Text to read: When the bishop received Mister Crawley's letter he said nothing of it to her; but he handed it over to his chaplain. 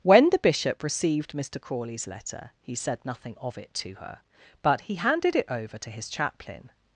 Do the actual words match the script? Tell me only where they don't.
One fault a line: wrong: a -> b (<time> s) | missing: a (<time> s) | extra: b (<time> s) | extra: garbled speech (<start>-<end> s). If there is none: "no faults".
no faults